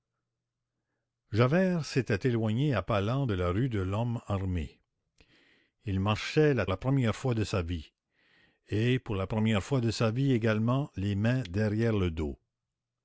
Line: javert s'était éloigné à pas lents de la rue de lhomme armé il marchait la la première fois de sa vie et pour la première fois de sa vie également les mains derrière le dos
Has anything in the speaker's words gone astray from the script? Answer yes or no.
no